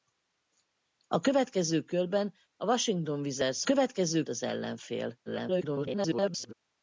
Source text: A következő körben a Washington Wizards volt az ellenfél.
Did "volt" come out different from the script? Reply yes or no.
yes